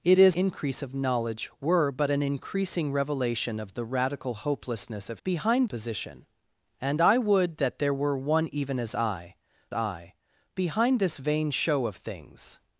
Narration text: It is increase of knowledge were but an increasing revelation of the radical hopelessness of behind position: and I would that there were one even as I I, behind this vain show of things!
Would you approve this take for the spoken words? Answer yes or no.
yes